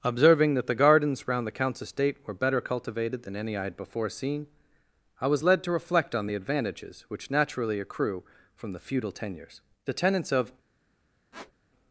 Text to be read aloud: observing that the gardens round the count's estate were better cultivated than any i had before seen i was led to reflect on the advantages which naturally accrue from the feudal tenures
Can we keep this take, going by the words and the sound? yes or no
no